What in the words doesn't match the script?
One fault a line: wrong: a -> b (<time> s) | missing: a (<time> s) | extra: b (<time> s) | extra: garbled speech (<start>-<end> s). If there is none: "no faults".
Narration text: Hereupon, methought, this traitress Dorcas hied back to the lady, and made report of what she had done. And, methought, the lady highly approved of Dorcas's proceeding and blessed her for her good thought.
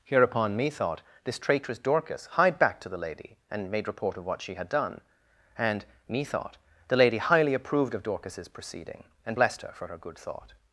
no faults